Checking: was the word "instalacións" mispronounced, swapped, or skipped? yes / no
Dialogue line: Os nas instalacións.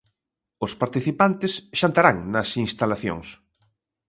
no